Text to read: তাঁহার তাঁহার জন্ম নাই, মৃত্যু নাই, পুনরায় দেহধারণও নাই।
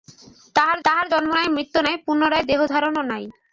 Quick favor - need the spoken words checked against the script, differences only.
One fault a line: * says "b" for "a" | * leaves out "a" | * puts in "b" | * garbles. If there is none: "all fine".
all fine